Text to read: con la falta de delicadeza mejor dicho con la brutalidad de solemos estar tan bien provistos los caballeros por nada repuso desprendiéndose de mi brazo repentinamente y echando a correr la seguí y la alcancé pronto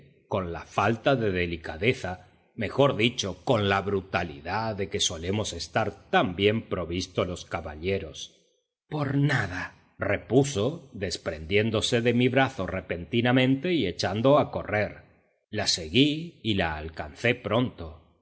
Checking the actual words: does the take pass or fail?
fail